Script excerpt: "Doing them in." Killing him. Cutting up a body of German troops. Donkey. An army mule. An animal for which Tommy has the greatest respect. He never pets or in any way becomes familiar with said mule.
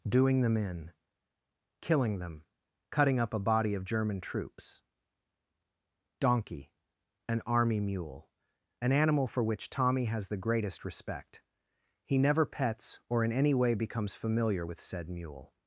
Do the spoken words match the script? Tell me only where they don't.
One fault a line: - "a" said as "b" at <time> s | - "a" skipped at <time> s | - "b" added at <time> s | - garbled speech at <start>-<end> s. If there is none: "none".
- "him" said as "them" at 2.2 s